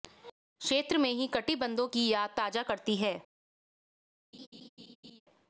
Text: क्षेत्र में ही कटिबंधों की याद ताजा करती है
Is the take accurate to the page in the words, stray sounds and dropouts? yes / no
no